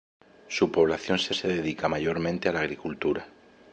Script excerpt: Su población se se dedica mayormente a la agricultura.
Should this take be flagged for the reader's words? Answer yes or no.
no